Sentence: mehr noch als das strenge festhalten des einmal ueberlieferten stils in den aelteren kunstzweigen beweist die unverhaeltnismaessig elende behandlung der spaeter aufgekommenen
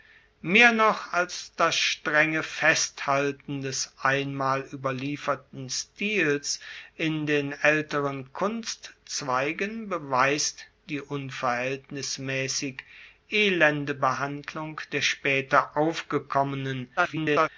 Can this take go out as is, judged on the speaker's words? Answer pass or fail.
fail